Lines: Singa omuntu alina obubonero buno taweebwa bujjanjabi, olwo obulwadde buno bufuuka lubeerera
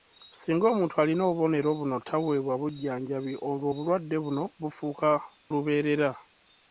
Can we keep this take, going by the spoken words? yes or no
yes